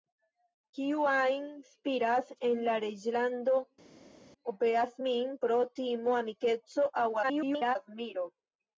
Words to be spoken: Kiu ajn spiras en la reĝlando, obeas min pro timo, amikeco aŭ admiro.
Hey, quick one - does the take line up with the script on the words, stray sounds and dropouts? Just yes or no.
no